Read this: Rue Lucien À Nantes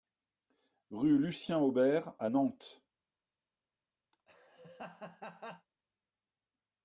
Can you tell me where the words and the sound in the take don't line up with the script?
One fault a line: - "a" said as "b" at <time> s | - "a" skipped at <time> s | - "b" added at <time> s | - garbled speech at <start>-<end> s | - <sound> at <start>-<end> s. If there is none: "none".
- "Aubert" added at 1.6 s
- laugh at 4.1-5.7 s